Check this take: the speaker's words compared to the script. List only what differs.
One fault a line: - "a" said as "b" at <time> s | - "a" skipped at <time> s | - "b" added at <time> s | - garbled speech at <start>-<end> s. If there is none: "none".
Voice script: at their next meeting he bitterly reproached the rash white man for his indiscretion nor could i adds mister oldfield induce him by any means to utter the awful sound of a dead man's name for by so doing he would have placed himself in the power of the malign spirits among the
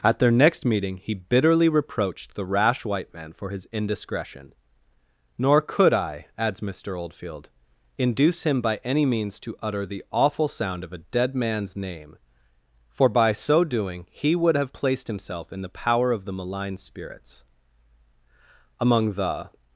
none